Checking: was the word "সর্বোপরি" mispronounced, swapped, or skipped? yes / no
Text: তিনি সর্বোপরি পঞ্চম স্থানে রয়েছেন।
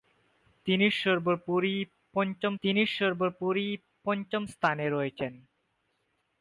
no